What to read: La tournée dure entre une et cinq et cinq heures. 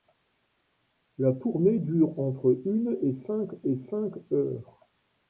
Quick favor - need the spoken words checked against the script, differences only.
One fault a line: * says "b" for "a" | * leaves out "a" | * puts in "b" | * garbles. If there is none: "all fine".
all fine